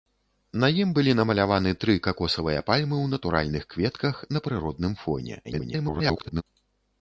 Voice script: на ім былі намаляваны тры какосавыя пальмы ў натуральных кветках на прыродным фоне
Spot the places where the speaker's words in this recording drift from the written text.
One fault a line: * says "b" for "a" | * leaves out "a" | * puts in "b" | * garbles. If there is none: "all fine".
* garbles